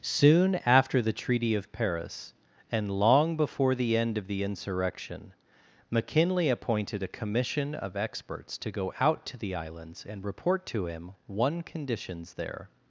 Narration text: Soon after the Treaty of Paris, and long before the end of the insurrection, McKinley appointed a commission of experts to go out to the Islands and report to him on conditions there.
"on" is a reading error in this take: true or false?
true